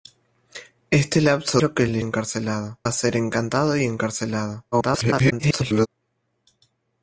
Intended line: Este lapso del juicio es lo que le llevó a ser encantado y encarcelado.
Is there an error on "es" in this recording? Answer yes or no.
yes